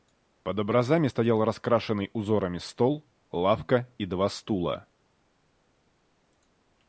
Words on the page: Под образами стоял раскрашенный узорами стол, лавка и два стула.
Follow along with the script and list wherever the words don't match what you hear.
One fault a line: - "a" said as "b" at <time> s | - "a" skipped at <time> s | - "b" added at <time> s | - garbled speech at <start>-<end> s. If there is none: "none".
none